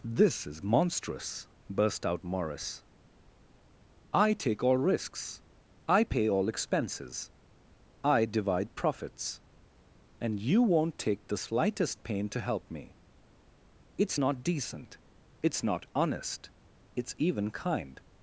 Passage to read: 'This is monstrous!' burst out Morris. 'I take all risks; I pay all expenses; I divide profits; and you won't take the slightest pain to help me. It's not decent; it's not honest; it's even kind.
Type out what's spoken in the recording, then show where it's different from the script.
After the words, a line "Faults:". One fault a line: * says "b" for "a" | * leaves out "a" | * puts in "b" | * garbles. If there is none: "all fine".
'This is monstrous!' burst out Morris. 'I take all risks; I pay all expenses; I divide profits; and you won't take the slightest pain to help me. It's not decent; it's not honest; it's even kind.
Faults:
all fine